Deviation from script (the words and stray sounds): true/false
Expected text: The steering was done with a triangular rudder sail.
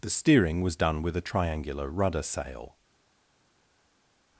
false